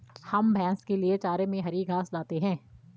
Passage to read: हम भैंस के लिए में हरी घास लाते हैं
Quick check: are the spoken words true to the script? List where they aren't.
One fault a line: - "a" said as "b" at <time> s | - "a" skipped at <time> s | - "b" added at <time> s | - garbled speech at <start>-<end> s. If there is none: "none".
- "चारे" added at 1.2 s